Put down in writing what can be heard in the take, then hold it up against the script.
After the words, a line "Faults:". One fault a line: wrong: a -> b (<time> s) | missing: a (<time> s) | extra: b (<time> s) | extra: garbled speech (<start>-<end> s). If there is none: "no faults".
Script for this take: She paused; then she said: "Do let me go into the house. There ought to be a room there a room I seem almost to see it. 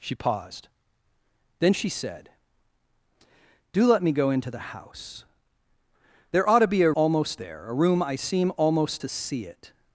She paused; then she said: "Do let me go into the house. There ought to be a almost there a room I seem almost to see it.
Faults:
wrong: room -> almost (6.9 s)